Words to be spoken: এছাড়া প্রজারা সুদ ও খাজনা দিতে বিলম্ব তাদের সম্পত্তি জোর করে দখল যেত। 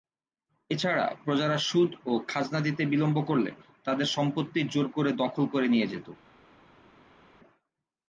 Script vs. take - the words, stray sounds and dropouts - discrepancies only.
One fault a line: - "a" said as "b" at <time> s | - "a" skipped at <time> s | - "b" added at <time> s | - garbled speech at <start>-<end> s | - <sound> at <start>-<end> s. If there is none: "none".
- "করলে" added at 3.2 s
- "করে নিয়ে" added at 5.5 s